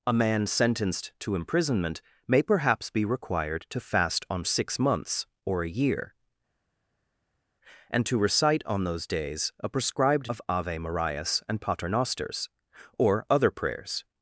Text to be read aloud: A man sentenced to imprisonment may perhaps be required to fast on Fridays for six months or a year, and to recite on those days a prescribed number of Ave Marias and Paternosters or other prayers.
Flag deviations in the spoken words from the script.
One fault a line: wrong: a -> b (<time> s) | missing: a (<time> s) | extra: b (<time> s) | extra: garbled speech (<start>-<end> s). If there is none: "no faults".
missing: Fridays for (4.5 s)
missing: number (10.3 s)